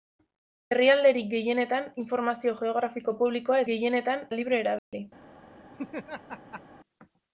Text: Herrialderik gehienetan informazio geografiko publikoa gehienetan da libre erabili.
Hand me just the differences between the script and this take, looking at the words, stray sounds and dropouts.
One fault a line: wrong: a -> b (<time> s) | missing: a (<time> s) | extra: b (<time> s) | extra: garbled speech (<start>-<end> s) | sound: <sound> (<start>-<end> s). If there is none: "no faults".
sound: dropout (4.8-4.9 s)
sound: laugh (5.7-6.6 s)